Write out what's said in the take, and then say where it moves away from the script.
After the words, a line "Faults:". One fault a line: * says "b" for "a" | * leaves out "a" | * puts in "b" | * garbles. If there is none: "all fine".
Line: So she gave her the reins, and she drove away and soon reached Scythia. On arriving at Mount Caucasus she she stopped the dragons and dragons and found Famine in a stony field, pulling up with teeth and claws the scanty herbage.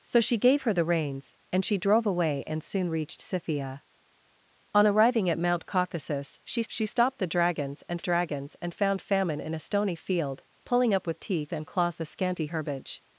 So she gave her the reins, and she drove away and soon reached Scythia. On arriving at Mount Caucasus she she stopped the dragons and dragons and found Famine in a stony field, pulling up with teeth and claws the scanty herbage.
Faults:
all fine